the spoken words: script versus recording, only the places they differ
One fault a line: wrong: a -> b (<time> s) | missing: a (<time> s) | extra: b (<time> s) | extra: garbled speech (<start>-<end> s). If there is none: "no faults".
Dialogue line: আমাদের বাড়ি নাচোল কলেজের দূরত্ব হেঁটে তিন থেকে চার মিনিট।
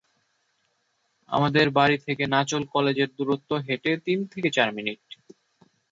extra: থেকে (2.0 s)